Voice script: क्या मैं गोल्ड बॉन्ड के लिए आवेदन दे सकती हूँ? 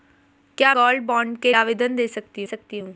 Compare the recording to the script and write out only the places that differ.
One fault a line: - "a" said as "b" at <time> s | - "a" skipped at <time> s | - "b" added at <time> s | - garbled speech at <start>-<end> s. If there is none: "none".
- "मैं" skipped at 0.7 s
- "लिए" skipped at 1.5 s
- "सकती" added at 2.4 s